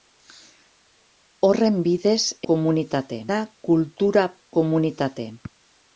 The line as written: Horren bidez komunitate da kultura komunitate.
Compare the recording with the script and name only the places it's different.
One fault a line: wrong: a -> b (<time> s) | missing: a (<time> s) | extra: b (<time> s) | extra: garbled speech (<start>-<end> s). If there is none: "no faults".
no faults